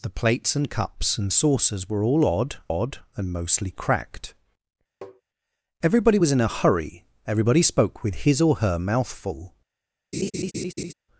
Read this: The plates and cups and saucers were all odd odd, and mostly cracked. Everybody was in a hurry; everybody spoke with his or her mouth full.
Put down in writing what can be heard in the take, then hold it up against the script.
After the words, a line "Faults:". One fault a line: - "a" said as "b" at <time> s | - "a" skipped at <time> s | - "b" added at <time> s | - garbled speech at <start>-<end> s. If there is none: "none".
The plates and cups and saucers were all odd odd, and mostly cracked. Everybody was in a hurry; everybody spoke with his or her mouth full.
Faults:
none